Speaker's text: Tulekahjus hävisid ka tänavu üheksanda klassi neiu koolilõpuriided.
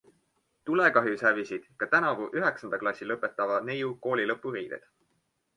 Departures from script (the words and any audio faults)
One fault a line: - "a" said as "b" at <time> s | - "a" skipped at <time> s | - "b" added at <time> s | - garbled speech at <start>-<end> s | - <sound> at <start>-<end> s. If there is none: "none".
- "lõpetava" added at 3.1 s